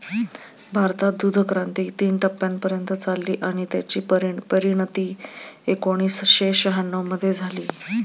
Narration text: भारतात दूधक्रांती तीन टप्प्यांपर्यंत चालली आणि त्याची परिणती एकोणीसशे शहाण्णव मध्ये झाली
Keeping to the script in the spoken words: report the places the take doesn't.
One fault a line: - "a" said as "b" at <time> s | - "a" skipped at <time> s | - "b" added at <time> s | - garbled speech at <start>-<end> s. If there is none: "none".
none